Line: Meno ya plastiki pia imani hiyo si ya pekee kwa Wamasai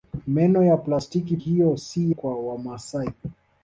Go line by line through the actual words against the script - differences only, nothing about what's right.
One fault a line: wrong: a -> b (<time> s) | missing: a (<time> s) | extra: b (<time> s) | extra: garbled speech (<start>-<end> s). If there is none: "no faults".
missing: pia imani (1.4 s)
missing: ya pekee (2.1 s)